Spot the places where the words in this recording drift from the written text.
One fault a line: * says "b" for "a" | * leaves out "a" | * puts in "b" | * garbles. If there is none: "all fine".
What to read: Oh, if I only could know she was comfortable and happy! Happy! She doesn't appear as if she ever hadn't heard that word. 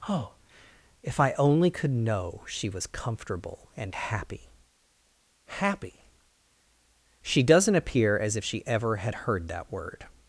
* says "had" for "hadn't"